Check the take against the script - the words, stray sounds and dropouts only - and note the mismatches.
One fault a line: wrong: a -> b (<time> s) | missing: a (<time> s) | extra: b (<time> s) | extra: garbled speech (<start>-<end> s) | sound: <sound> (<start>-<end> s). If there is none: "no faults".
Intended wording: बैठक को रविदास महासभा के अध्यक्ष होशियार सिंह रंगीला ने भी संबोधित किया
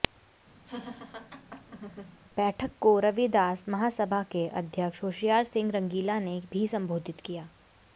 sound: laugh (0.7-2.2 s)